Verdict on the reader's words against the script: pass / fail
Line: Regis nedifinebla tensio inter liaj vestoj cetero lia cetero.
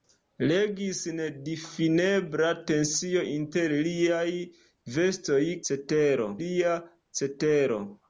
pass